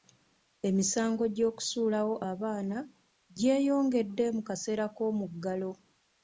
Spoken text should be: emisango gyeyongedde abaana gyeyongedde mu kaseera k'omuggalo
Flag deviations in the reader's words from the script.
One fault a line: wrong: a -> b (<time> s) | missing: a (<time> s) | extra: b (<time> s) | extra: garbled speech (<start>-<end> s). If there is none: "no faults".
wrong: gyeyongedde -> gy'okusuulawo (1.4 s)